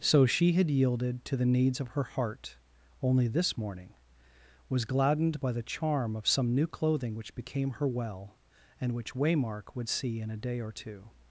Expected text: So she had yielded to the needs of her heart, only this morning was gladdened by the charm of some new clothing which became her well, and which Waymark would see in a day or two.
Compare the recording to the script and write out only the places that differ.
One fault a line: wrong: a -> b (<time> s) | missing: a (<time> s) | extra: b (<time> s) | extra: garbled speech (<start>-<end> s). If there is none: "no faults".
no faults